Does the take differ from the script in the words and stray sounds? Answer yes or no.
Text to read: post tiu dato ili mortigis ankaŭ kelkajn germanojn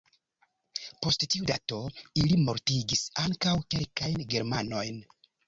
no